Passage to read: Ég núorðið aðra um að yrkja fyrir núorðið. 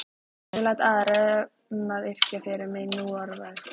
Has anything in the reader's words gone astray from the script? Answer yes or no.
yes